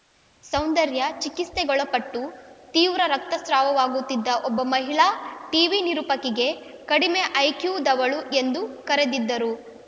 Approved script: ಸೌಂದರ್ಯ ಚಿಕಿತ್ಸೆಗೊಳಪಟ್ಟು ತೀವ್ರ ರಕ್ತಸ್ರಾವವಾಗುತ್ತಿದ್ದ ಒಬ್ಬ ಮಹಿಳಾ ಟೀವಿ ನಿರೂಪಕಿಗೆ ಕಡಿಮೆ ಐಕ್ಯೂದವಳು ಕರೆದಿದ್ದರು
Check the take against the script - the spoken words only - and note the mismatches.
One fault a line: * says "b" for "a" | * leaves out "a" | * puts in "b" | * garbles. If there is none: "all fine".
* puts in "ಎಂದು"